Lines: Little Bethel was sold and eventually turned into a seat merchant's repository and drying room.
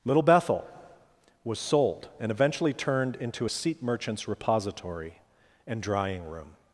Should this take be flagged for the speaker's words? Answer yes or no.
no